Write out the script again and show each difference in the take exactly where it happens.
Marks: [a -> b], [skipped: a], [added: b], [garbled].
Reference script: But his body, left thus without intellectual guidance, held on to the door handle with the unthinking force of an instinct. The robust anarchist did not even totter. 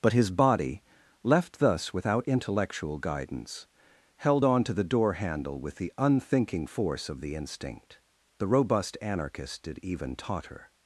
But his body, left thus without intellectual guidance, held on to the door handle with the unthinking force of [an -> the] instinct. The robust anarchist did [skipped: not] even totter.